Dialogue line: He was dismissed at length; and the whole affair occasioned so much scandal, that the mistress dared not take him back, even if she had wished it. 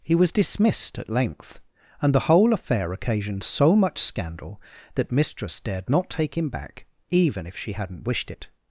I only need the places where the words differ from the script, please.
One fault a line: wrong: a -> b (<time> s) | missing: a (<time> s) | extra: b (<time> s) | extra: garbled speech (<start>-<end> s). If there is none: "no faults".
missing: the (5.1 s)
wrong: had -> hadn't (7.7 s)